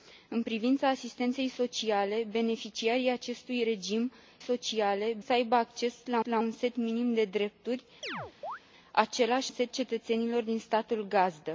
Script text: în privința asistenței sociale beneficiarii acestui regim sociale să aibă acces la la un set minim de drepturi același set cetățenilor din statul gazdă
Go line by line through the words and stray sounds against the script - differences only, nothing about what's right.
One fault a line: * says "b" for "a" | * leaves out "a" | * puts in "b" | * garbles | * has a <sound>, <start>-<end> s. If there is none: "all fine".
* has a chirp, 8.0-8.6 s